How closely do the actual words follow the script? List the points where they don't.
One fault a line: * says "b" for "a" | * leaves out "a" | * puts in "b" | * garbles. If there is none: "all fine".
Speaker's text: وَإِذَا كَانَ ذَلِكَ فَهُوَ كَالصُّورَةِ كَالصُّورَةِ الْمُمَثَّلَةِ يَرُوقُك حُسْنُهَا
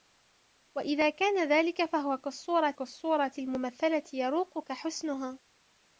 all fine